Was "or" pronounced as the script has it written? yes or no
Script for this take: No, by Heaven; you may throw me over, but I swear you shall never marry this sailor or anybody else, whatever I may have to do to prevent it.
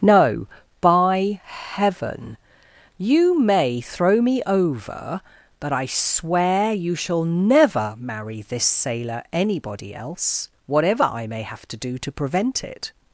no